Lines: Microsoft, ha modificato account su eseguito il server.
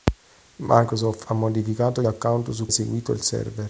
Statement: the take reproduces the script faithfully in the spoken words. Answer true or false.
true